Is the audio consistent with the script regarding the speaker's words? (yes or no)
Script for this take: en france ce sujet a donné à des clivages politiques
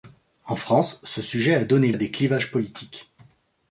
yes